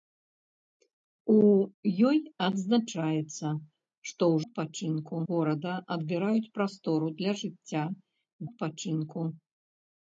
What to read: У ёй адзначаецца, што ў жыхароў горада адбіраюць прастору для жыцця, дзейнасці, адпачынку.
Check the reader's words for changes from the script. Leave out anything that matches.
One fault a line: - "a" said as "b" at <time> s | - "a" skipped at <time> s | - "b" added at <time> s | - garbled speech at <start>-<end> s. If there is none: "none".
- "жыхароў" said as "адпачынку" at 4.5 s
- "дзейнасці" skipped at 7.8 s